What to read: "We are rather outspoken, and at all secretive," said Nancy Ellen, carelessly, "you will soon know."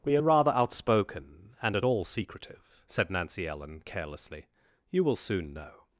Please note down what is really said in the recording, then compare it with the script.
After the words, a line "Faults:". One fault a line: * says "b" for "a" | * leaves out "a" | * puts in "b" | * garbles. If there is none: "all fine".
"We are rather outspoken, and at all secretive," said Nancy Ellen, carelessly, "you will soon know."
Faults:
all fine